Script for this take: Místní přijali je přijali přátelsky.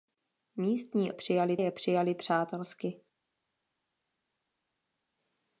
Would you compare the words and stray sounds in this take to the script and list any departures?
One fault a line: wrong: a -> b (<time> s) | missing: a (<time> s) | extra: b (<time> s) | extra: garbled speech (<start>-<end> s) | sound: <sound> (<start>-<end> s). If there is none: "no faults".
no faults